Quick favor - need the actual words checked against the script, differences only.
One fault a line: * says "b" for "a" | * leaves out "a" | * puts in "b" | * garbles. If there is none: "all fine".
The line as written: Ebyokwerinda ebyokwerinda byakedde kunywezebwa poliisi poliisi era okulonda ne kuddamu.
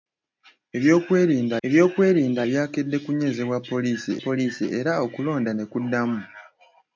all fine